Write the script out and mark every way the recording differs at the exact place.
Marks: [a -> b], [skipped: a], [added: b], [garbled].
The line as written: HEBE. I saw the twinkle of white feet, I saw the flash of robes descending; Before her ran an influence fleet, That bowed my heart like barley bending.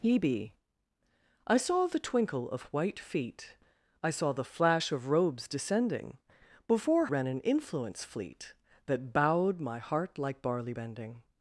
HEBE. I saw the twinkle of white feet, I saw the flash of robes descending; Before [skipped: her] ran an influence fleet, That bowed my heart like barley bending.